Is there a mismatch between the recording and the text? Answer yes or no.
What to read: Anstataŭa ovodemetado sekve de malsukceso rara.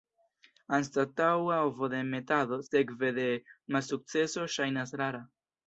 yes